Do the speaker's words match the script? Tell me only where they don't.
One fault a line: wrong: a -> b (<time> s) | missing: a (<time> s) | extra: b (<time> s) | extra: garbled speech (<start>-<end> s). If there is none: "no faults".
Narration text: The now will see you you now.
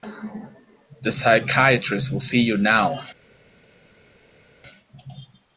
wrong: now -> psychiatrist (1.1 s)
missing: you (2.6 s)